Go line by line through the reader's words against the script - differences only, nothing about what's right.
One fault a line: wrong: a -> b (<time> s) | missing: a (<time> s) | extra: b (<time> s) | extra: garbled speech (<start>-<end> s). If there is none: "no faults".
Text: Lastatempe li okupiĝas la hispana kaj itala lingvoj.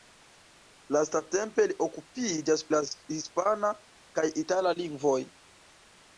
no faults